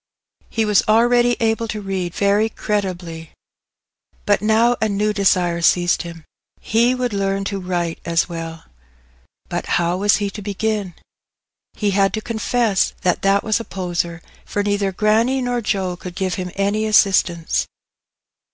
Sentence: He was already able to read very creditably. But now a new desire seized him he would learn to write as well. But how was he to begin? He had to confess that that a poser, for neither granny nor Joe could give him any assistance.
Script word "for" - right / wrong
right